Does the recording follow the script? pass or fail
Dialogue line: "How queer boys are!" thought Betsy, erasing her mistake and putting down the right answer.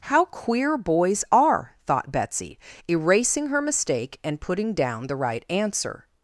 pass